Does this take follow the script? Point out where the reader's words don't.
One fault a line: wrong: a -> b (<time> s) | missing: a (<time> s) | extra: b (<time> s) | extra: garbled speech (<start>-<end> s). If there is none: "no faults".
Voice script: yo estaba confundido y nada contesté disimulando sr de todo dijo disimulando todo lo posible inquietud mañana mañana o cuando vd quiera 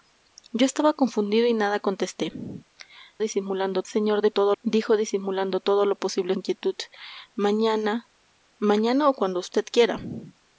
no faults